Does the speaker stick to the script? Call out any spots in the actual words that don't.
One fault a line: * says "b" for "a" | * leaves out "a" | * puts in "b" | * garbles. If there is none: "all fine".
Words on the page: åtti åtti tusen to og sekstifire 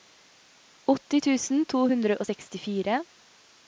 * leaves out "åtti"
* puts in "hundre"